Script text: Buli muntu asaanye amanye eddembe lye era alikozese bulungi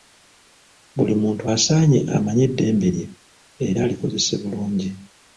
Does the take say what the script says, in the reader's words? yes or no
yes